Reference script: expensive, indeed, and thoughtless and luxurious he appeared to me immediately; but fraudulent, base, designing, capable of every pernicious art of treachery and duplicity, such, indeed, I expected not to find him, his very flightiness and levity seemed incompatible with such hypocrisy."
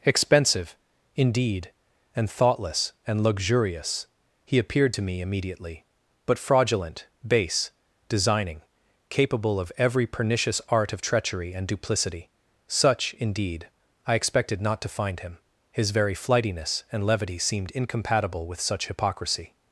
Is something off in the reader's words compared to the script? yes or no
no